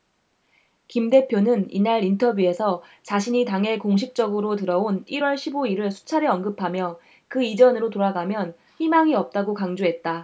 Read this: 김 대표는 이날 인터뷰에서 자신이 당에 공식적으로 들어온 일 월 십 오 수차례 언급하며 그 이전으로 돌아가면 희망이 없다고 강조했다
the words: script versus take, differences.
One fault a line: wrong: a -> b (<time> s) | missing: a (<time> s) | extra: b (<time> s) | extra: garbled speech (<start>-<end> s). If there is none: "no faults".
extra: 일을 (5.7 s)